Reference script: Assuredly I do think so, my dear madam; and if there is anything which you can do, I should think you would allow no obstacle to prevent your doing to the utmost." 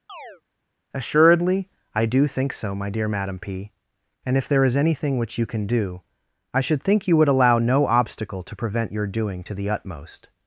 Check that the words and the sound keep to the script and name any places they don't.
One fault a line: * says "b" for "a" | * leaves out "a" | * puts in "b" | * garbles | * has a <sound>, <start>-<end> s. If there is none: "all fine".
* has a chirp, 0.1-0.4 s
* puts in "p"